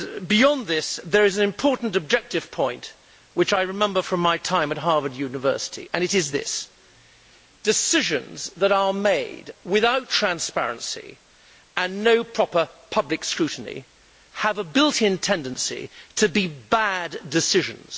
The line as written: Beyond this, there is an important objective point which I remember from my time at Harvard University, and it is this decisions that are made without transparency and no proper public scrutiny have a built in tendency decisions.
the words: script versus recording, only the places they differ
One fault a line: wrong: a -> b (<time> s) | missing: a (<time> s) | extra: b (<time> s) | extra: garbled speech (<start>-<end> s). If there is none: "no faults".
extra: to be bad (16.2 s)